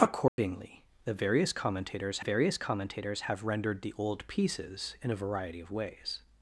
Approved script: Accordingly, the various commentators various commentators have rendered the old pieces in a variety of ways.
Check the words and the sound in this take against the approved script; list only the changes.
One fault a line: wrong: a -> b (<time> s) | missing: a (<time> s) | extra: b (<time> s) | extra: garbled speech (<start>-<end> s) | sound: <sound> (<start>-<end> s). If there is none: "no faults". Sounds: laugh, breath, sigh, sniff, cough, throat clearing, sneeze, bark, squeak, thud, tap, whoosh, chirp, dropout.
sound: dropout (0.3-0.4 s)